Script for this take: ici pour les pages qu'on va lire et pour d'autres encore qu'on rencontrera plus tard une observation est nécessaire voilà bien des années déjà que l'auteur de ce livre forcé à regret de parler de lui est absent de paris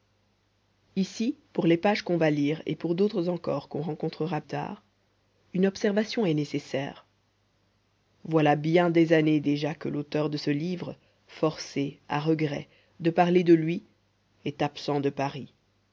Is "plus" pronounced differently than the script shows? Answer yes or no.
yes